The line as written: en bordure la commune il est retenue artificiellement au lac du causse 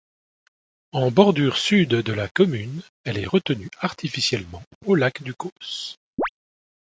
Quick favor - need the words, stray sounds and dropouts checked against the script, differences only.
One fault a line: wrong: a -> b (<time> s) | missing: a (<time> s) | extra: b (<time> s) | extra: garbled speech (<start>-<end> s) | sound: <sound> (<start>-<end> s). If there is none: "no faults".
extra: sud de (1.6 s)
wrong: il -> elle (3.0 s)
sound: chirp (6.2-6.3 s)